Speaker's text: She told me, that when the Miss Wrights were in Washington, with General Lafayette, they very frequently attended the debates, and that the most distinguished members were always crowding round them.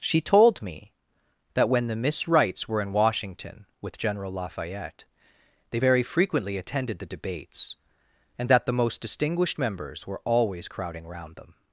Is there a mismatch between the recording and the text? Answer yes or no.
no